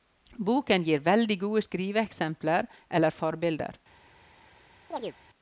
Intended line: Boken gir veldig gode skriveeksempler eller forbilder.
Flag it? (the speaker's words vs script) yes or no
no